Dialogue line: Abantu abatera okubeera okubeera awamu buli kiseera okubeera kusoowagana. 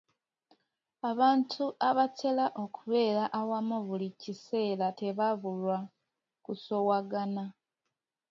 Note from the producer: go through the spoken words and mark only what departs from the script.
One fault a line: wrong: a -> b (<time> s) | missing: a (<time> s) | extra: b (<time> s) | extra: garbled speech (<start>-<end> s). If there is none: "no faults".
missing: okubeera (3.2 s)
wrong: okubeera -> tebabulwa (5.0 s)